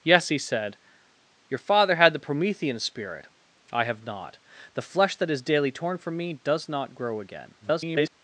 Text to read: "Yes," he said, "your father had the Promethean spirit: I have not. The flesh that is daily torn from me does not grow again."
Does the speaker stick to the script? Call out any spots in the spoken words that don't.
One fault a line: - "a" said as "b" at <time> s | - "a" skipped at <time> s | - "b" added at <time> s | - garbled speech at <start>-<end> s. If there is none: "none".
- garbled speech at 7.6-8.1 s